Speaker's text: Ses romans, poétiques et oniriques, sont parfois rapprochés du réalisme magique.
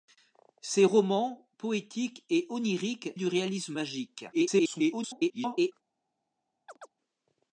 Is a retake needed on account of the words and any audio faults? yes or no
yes